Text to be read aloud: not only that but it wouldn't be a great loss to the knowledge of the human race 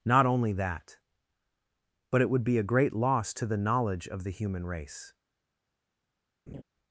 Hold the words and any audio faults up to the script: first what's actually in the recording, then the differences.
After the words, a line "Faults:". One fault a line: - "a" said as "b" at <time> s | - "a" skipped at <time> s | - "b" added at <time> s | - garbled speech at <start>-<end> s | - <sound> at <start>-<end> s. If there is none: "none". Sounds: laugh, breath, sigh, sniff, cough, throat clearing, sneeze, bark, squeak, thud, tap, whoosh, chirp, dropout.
not only that but it would be a great loss to the knowledge of the human race
Faults:
- "wouldn't" said as "would" at 2.3 s
- laugh at 6.5-6.6 s